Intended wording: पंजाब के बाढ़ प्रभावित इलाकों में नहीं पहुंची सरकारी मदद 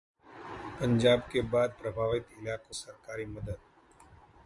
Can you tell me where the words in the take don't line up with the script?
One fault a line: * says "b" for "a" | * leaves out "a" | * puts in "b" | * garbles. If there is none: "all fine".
* leaves out "में नहीं पहुंची"